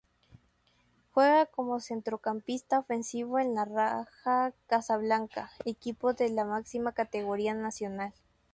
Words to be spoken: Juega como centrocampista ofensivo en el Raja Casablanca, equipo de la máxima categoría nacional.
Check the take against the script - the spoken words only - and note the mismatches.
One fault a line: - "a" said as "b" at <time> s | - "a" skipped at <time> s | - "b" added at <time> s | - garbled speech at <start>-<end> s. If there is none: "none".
none